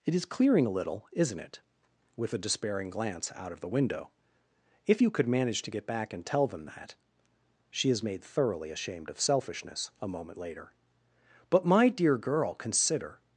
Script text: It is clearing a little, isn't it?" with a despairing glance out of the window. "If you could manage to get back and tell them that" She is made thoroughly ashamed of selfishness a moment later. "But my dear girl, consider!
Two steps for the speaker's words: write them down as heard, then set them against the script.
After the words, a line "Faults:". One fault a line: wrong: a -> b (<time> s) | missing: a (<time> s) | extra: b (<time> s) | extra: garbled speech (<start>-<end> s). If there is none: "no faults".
It is clearing a little, isn't it?" with a despairing glance out of the window. "If you could manage to get back and tell them that" She is made thoroughly ashamed of selfishness a moment later. "But my dear girl, consider!
Faults:
no faults